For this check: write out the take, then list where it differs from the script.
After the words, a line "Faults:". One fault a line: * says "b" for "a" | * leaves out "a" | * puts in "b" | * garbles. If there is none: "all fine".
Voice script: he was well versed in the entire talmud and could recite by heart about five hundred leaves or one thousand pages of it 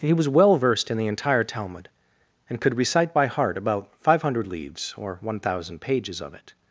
he was well versed in the entire talmud and could recite by heart about five hundred leaves or one thousand pages of it
Faults:
all fine